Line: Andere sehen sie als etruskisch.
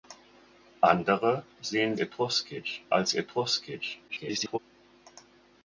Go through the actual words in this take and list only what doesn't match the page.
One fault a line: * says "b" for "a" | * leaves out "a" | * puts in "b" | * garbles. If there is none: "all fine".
* says "etruskisch" for "sie"
* garbles